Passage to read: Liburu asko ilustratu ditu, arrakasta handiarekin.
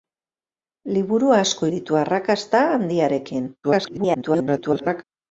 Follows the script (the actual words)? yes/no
no